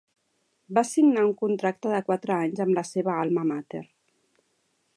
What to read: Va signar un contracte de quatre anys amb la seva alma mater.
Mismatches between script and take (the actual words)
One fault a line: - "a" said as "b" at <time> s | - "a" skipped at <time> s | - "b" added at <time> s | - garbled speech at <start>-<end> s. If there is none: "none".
none